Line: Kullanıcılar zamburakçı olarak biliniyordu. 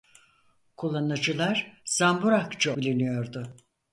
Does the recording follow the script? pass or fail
fail